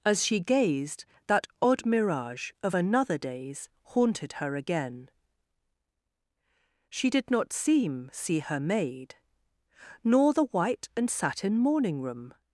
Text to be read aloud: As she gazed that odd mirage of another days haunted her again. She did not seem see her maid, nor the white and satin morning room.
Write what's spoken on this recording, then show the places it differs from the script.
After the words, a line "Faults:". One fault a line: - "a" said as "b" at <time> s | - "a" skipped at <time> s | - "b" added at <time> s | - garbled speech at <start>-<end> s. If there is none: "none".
As she gazed that odd mirage of another days haunted her again. She did not seem see her maid, nor the white and satin morning room.
Faults:
none